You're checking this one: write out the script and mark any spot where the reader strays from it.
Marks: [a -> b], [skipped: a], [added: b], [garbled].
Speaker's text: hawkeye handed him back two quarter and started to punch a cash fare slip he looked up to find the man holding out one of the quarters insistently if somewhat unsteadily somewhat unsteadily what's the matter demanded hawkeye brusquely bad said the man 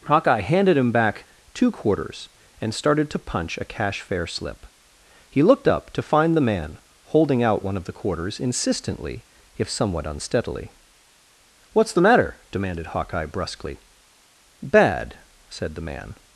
hawkeye handed him back two [quarter -> quarters] and started to punch a cash fare slip he looked up to find the man holding out one of the quarters insistently if somewhat unsteadily [skipped: somewhat unsteadily] what's the matter demanded hawkeye brusquely bad said the man